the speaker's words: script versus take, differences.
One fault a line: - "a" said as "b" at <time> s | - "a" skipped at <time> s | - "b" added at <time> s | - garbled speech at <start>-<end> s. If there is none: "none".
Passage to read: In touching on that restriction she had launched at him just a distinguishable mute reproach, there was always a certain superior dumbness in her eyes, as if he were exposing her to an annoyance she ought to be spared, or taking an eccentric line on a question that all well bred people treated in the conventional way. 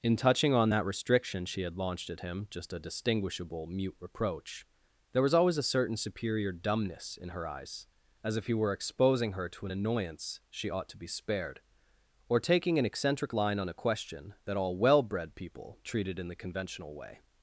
none